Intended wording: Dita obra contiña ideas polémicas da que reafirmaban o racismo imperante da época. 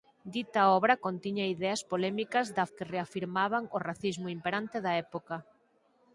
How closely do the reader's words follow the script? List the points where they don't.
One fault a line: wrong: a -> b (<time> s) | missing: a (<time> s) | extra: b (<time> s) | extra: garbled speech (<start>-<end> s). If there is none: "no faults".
no faults